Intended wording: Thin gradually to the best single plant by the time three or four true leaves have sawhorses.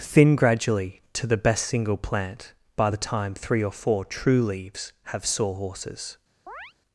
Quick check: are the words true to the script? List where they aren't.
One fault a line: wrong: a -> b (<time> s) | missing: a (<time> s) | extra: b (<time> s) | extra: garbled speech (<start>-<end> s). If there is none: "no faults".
no faults